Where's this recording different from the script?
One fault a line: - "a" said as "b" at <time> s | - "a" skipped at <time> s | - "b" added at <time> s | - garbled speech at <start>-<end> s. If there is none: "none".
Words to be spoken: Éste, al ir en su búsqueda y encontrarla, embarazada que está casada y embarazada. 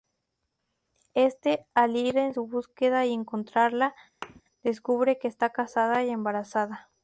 - "embarazada" said as "descubre" at 4.6 s